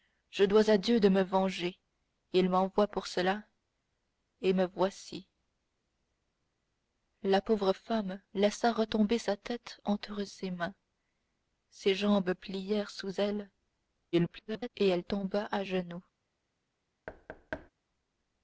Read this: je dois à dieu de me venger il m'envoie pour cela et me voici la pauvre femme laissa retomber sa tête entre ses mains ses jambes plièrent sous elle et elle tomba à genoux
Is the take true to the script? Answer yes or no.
no